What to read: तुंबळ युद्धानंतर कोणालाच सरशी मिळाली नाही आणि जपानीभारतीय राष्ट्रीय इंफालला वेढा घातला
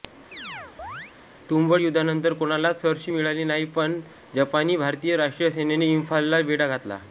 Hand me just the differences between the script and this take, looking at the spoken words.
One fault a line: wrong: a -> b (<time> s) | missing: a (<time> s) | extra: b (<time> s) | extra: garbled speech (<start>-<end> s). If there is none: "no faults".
wrong: आणि -> पण (3.8 s)
extra: सेनेने (5.5 s)